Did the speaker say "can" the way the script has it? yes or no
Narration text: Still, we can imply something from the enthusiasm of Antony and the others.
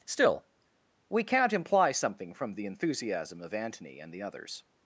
no